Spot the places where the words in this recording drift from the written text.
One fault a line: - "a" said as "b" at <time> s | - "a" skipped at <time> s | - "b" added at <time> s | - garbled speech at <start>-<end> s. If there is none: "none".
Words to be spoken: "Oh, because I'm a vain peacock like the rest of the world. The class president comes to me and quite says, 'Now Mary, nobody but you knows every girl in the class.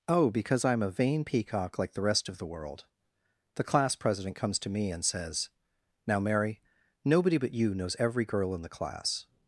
- "quite" skipped at 5.0 s